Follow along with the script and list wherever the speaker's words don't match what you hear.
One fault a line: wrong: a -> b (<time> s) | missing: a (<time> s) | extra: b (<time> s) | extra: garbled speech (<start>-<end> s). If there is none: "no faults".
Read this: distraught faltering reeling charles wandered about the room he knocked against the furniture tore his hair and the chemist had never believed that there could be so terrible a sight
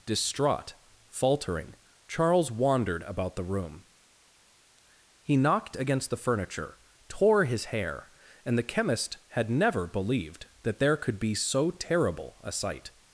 missing: reeling (1.8 s)